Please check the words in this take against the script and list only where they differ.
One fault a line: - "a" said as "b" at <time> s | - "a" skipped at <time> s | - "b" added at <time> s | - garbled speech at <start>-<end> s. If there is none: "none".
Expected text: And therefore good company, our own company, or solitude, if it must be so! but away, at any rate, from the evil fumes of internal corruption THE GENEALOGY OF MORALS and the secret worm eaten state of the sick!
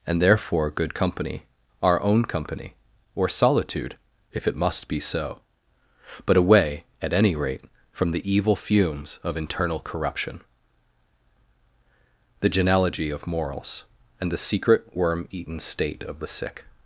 none